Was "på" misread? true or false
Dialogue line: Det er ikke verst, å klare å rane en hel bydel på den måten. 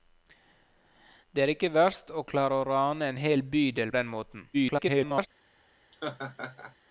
true